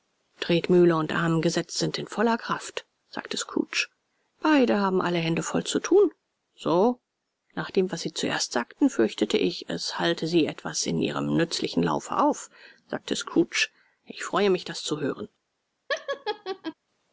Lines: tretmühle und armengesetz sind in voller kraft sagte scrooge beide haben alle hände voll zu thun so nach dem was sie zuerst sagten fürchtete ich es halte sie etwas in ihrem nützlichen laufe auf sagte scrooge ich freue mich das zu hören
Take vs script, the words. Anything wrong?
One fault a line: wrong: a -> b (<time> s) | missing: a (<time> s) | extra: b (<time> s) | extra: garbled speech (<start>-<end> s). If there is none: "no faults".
no faults